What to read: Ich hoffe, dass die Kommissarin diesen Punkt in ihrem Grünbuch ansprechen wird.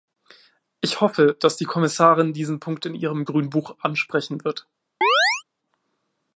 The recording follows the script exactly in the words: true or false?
true